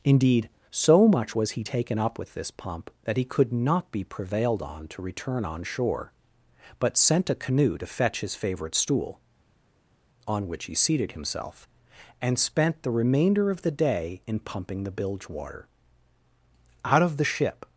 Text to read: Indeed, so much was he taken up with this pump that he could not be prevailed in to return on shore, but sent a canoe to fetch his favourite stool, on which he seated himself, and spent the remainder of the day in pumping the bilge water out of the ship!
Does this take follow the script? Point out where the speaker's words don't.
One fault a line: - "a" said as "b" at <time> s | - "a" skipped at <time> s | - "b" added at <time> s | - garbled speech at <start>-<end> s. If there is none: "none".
- "in" said as "on" at 4.6 s